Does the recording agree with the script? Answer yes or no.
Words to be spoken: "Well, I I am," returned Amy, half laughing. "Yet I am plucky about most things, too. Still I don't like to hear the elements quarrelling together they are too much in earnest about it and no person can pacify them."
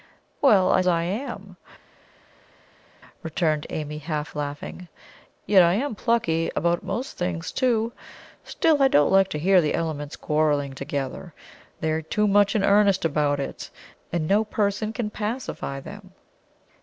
yes